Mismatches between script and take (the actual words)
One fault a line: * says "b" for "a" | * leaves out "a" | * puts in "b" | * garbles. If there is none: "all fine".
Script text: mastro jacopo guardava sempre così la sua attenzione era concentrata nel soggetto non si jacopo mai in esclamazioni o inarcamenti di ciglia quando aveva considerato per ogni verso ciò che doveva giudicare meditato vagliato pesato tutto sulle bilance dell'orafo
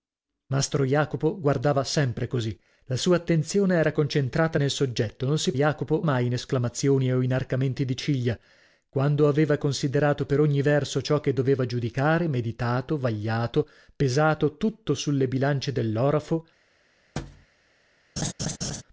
all fine